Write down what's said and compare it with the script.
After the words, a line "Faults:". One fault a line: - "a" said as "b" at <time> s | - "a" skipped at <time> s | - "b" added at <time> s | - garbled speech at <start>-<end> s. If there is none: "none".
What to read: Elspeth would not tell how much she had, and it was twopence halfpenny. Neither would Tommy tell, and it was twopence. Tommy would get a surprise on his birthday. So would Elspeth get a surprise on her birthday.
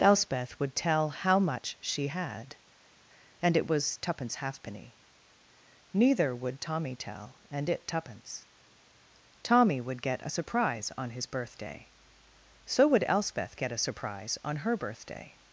Elspeth would tell how much she had, and it was twopence halfpenny. Neither would Tommy tell, and it twopence. Tommy would get a surprise on his birthday. So would Elspeth get a surprise on her birthday.
Faults:
- "not" skipped at 0.8 s
- "was" skipped at 7.9 s